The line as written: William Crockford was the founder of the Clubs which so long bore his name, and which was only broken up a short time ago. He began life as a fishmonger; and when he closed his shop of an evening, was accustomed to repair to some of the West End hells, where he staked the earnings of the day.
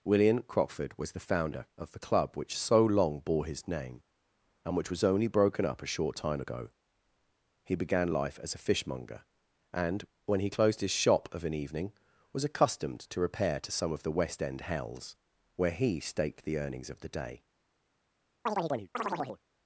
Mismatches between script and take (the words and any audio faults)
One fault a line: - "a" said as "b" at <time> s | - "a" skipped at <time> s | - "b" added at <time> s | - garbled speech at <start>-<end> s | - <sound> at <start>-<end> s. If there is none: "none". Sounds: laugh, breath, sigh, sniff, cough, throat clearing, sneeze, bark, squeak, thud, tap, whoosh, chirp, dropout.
- "Clubs" said as "Club" at 2.0 s
- chirp at 18.5-19.4 s